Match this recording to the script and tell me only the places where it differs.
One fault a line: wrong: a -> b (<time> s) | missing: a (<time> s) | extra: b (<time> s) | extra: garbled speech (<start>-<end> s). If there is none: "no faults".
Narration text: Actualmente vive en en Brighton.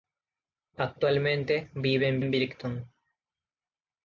no faults